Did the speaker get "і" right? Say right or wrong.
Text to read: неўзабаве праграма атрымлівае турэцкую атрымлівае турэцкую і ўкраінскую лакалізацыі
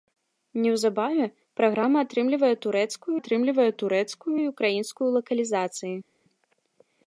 right